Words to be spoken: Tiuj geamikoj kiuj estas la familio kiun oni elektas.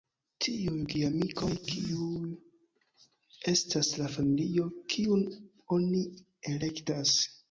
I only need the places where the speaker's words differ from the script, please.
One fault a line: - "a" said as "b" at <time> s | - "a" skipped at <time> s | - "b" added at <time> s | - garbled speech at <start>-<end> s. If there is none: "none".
none